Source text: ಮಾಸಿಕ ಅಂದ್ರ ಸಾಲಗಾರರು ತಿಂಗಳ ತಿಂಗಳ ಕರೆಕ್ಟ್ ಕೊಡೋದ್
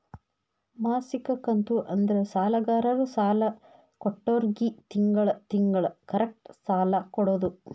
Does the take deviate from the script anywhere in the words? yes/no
yes